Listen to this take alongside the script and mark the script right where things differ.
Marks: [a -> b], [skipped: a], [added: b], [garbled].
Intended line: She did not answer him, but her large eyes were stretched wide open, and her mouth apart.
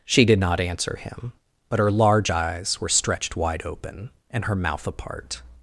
She did not answer him, but her large eyes were stretched wide open, and her mouth apart.